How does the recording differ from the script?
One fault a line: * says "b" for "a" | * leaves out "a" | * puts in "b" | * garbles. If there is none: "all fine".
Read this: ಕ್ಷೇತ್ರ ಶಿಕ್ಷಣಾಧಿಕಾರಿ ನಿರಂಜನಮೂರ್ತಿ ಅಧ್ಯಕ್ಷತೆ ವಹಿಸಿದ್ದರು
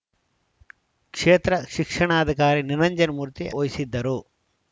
* leaves out "ಅಧ್ಯಕ್ಷತೆ"